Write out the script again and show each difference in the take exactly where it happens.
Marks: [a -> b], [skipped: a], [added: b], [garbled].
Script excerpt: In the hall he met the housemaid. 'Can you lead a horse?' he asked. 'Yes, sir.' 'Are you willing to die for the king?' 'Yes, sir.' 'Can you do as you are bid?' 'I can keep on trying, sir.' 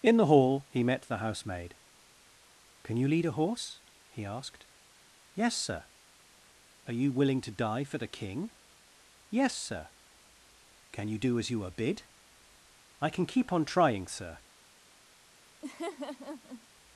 In the hall he met the housemaid. 'Can you lead a horse?' he asked. 'Yes, sir.' 'Are you willing to die for the king?' 'Yes, sir.' 'Can you do as you are bid?' 'I can keep on trying, sir.'